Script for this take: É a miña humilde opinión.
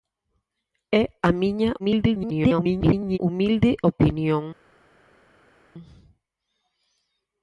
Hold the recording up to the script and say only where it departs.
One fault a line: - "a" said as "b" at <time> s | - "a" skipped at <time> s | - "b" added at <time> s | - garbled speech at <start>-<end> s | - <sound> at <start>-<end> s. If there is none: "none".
- garbled speech at 1.8-3.2 s